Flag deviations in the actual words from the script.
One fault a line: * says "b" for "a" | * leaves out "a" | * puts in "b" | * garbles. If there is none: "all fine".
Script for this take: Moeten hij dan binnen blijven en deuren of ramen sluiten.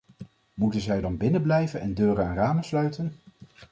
* says "zij" for "hij"
* says "en" for "of"